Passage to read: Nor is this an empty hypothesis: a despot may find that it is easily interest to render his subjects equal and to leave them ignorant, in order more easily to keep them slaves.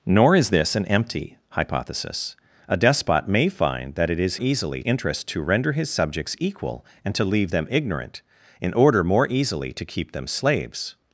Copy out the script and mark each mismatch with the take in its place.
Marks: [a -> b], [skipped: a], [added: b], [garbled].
Nor is this an empty hypothesis: a despot may find that it is easily interest to render his subjects equal and to leave them ignorant, in order more easily to keep them slaves.